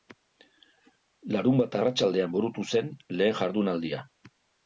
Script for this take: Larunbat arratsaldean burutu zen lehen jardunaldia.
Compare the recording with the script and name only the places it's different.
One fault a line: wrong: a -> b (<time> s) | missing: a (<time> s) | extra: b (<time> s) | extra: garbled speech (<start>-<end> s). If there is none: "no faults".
no faults